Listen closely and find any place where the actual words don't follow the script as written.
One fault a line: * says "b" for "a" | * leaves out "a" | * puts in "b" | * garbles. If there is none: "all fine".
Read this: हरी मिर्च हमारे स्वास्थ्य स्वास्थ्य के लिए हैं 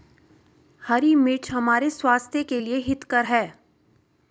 * leaves out "स्वास्थ्य"
* puts in "हितकर"